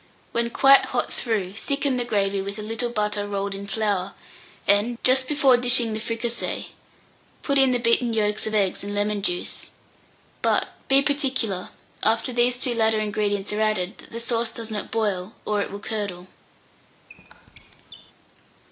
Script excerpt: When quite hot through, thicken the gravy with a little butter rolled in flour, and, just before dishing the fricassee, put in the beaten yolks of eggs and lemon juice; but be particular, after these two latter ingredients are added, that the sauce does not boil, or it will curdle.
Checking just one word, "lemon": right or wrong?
right